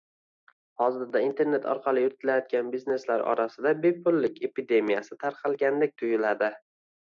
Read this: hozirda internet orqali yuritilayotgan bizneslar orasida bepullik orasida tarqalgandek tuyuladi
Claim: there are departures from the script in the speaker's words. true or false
true